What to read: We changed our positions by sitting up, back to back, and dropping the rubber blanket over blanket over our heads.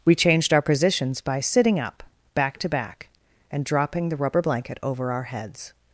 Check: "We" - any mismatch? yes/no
no